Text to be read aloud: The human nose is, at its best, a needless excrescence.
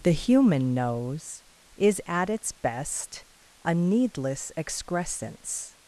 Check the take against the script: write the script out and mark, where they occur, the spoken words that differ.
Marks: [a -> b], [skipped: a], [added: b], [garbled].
The human nose is, at its best, a needless excrescence.